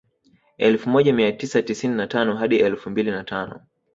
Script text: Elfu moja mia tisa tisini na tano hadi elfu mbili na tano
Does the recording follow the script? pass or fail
pass